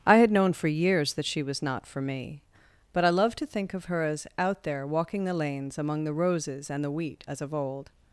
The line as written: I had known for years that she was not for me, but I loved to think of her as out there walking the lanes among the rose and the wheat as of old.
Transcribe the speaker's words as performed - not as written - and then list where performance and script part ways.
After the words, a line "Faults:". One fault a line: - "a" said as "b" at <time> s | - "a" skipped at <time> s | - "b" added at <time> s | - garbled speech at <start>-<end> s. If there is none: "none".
I had known for years that she was not for me, but I loved to think of her as out there walking the lanes among the roses and the wheat as of old.
Faults:
- "rose" said as "roses" at 6.1 s